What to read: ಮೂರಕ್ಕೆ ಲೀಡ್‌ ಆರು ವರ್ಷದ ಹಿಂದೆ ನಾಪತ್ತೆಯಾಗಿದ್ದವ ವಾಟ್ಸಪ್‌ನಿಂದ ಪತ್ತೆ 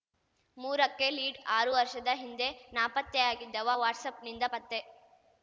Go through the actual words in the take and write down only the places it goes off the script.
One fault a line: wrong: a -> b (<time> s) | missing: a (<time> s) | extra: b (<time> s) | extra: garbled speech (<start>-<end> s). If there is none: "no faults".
no faults